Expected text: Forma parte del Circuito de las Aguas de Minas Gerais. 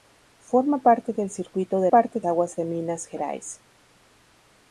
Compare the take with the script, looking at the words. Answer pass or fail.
fail